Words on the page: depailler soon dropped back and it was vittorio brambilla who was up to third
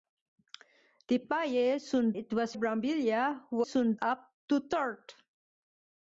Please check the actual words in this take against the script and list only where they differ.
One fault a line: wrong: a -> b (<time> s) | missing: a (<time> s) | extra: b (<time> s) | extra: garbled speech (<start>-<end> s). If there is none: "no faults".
missing: dropped back and (2.1 s)
missing: vittorio (2.5 s)
wrong: was -> soon (3.6 s)